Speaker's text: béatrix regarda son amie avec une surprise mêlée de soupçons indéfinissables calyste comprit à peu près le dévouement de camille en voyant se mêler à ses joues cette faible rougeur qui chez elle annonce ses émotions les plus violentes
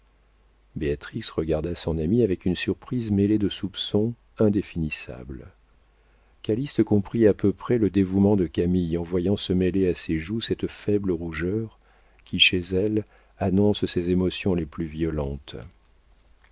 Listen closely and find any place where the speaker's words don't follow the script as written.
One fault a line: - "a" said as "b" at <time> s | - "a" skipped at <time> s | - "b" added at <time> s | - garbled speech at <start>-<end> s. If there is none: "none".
none